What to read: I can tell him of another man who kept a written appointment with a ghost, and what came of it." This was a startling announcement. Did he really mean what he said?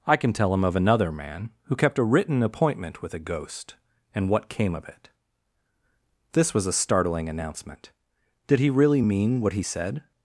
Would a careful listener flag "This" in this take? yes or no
no